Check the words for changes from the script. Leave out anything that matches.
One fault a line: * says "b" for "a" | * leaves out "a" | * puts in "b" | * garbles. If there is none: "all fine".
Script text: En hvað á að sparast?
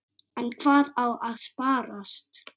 all fine